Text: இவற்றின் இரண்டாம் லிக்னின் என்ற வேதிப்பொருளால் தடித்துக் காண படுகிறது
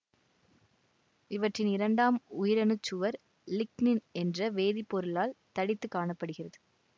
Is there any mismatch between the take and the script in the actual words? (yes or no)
yes